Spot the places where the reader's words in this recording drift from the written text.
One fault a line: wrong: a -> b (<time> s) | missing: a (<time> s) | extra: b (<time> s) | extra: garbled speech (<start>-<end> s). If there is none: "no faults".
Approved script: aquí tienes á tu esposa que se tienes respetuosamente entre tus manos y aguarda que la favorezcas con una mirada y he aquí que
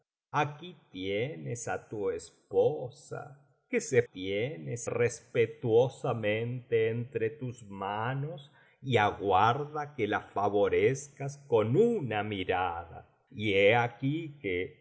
no faults